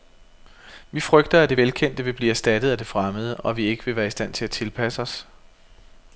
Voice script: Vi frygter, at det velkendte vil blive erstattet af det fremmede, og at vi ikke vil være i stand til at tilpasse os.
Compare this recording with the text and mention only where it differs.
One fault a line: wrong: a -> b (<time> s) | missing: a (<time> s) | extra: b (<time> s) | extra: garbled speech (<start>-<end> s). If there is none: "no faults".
no faults